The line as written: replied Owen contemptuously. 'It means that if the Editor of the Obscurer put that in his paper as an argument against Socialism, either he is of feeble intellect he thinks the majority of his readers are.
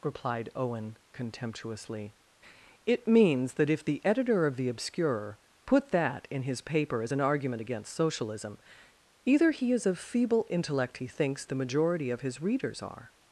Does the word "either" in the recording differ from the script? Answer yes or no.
no